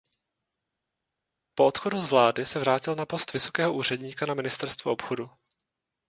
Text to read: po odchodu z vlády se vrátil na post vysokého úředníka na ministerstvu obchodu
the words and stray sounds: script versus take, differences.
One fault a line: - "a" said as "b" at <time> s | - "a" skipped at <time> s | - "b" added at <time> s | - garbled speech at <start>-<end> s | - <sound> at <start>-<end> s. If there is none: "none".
none